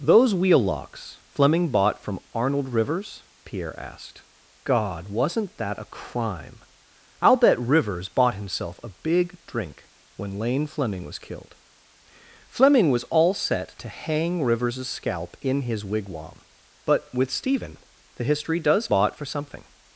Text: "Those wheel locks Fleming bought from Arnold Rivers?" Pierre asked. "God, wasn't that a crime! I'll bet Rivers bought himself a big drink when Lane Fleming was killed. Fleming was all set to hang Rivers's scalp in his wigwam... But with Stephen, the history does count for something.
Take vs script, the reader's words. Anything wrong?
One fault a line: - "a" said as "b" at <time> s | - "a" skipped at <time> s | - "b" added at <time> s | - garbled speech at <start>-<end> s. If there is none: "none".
- "count" said as "bought" at 18.9 s